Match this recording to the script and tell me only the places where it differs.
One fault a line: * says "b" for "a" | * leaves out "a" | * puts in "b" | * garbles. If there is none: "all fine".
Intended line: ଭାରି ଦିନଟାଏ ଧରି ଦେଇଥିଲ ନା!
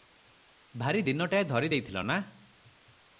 all fine